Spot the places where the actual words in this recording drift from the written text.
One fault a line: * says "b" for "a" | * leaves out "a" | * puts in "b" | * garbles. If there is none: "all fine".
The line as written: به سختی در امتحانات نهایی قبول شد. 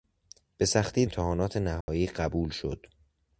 * leaves out "در"